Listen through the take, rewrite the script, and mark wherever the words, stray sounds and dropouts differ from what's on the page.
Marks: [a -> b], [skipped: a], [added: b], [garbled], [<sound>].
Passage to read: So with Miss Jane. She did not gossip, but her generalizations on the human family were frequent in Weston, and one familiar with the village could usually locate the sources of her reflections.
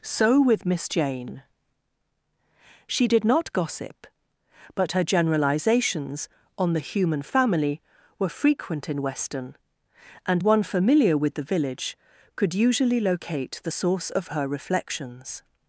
So with Miss Jane. She did not gossip, but her generalizations on the human family were frequent in Weston, and one familiar with the village could usually locate the [sources -> source] of her reflections.